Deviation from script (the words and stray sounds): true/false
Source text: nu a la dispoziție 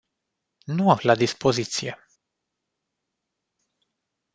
false